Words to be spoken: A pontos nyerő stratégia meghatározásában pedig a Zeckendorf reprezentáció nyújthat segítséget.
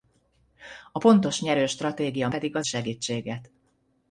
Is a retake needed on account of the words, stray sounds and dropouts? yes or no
yes